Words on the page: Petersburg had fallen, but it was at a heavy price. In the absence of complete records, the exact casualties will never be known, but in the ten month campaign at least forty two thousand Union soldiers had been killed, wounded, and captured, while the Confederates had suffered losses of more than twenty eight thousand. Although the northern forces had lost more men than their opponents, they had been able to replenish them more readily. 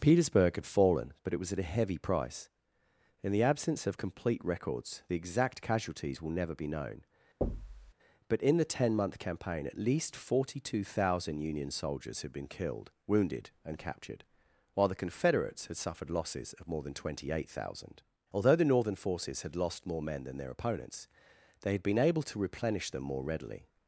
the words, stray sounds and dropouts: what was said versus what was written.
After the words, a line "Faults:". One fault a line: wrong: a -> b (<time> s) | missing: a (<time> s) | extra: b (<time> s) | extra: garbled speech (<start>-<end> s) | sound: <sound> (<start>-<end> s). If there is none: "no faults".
Petersburg had fallen, but it was at a heavy price. In the absence of complete records, the exact casualties will never be known, but in the ten month campaign at least forty two thousand Union soldiers had been killed, wounded, and captured, while the Confederates had suffered losses of more than twenty eight thousand. Although the northern forces had lost more men than their opponents, they had been able to replenish them more readily.
Faults:
sound: thud (7.4-7.9 s)